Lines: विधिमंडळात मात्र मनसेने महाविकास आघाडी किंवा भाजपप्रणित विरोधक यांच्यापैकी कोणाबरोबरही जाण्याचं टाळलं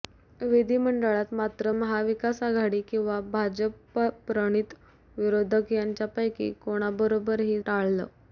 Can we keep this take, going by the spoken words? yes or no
no